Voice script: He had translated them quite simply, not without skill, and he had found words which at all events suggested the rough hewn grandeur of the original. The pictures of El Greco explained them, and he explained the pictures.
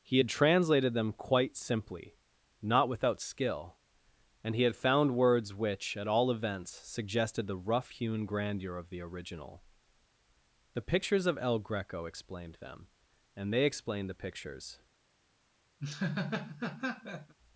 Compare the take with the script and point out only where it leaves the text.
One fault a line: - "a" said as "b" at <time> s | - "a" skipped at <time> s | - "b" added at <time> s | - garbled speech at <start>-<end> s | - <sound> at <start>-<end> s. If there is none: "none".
- "he" said as "they" at 13.5 s
- laugh at 15.8-17.3 s